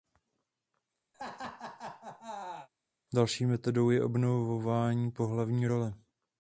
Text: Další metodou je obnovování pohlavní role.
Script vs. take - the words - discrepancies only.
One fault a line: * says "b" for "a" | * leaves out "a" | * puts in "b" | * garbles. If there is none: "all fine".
all fine